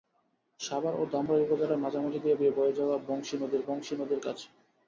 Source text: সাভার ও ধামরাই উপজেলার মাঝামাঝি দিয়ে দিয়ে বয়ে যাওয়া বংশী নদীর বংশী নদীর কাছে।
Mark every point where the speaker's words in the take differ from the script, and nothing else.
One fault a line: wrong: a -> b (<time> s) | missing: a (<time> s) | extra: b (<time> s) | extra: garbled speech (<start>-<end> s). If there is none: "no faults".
no faults